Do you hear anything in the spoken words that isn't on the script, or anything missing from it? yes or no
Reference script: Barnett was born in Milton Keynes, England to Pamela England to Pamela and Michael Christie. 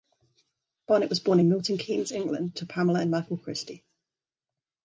yes